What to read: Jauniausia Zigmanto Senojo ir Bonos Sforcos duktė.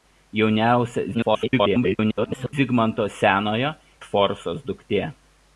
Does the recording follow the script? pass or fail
fail